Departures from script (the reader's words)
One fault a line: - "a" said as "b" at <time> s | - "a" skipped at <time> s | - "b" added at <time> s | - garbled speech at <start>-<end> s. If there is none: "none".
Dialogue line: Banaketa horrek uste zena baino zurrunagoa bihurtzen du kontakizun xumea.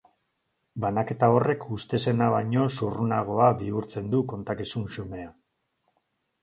none